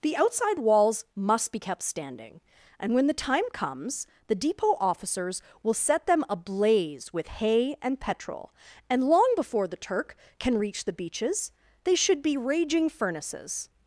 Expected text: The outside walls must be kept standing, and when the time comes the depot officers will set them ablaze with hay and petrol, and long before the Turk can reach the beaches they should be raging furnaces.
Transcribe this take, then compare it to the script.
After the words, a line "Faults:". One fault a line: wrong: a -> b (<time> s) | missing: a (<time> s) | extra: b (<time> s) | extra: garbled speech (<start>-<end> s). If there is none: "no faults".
The outside walls must be kept standing, and when the time comes the depot officers will set them ablaze with hay and petrol, and long before the Turk can reach the beaches they should be raging furnaces.
Faults:
no faults